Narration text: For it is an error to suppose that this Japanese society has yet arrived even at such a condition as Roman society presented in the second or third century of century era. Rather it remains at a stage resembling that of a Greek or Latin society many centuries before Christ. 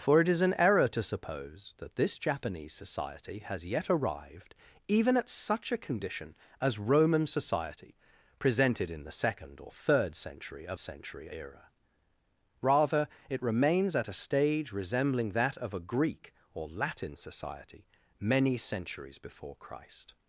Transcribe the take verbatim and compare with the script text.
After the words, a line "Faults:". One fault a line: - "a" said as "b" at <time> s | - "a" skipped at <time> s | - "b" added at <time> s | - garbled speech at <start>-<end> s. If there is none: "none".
For it is an error to suppose that this Japanese society has yet arrived even at such a condition as Roman society presented in the second or third century of century era. Rather it remains at a stage resembling that of a Greek or Latin society many centuries before Christ.
Faults:
none